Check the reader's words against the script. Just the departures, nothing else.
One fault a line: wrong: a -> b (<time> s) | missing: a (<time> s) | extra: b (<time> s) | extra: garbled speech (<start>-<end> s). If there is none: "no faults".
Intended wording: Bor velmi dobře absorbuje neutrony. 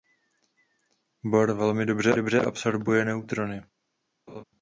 extra: dobře (2.1 s)